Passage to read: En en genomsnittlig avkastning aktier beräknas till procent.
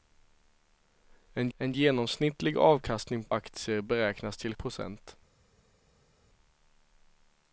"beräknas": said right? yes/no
yes